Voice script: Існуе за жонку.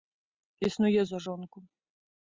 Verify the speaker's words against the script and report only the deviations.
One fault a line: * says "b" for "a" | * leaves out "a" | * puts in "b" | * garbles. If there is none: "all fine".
all fine